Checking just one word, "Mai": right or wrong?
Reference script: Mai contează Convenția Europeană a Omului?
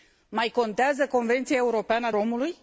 right